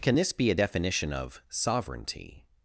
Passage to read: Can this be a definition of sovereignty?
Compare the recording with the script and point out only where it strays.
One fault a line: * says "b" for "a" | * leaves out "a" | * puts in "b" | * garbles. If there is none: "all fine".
all fine